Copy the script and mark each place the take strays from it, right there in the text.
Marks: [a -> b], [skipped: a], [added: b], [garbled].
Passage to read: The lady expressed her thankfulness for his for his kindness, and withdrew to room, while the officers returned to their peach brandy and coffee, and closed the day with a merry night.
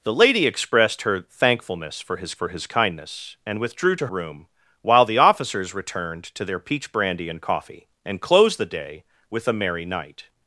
The lady expressed her thankfulness for his for his kindness, and withdrew to room, while the officers returned to their peach brandy and coffee, and closed the day with a merry night.